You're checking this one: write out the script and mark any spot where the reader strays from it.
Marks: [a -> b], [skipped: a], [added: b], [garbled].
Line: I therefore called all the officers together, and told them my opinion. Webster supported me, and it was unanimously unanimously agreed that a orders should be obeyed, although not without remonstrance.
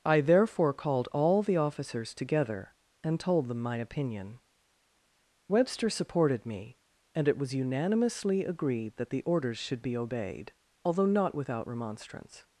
I therefore called all the officers together, and told them my opinion. Webster supported me, and it was unanimously [skipped: unanimously] agreed that [a -> the] orders should be obeyed, although not without remonstrance.